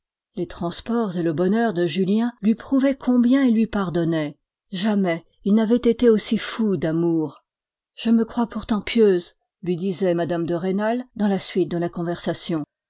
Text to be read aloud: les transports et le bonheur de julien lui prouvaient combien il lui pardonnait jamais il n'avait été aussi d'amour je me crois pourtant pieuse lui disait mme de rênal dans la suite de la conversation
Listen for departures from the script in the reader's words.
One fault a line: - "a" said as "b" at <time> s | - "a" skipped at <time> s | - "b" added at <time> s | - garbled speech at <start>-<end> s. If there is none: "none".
- "fou" added at 6.4 s